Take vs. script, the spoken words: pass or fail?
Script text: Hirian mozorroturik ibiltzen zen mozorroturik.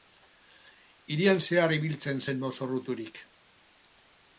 fail